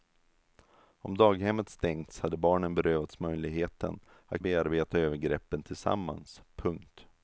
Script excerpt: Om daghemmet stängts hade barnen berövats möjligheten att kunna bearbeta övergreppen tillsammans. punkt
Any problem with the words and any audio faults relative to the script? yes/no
yes